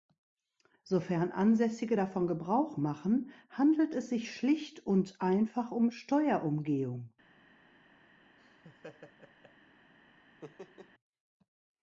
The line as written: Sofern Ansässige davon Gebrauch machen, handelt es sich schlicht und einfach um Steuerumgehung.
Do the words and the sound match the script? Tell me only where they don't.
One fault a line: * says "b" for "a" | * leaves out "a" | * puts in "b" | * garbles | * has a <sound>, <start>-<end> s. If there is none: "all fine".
* has a laugh, 8.4-9.5 s
* has a laugh, 10.4-10.9 s